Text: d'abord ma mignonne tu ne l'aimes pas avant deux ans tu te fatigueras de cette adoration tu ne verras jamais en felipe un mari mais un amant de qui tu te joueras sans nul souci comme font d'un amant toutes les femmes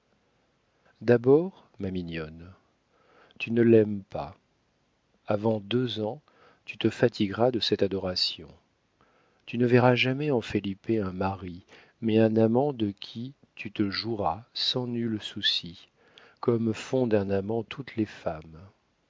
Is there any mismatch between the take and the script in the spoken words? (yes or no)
no